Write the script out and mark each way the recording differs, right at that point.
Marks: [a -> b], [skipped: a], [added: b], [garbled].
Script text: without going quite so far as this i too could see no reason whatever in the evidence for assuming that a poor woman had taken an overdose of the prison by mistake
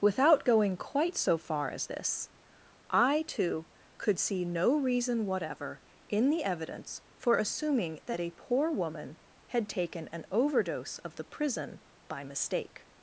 without going quite so far as this i too could see no reason whatever in the evidence for assuming that a poor woman had taken an overdose of the prison by mistake